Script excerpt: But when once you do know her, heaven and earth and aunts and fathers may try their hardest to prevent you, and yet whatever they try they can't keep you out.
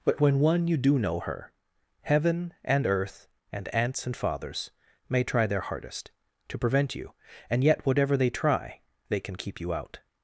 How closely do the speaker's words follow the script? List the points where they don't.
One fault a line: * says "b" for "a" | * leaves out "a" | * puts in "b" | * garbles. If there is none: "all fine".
* says "one" for "once"
* says "can" for "can't"